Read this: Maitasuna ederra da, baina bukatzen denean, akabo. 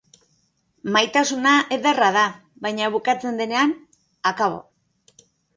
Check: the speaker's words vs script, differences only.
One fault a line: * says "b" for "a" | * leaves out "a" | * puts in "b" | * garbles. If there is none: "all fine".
all fine